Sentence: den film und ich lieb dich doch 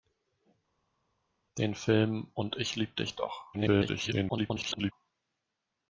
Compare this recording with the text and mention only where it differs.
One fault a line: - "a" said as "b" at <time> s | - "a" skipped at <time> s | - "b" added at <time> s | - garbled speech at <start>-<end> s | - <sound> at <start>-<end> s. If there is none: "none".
- garbled speech at 3.5-4.9 s